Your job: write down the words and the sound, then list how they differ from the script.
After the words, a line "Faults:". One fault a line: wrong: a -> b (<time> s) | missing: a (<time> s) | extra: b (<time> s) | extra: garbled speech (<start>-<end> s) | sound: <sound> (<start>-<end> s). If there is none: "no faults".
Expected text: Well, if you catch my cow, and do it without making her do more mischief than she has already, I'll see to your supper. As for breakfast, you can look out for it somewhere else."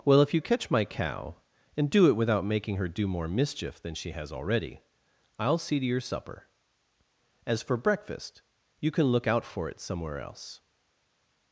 Well, if you catch my cow, and do it without making her do more mischief than she has already, I'll see to your supper. As for breakfast, you can look out for it somewhere else."
Faults:
no faults